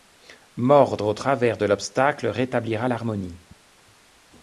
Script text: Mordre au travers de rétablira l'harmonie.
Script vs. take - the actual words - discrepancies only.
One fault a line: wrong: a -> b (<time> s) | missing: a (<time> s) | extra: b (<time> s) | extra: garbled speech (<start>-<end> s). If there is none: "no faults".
extra: l'obstacle (1.6 s)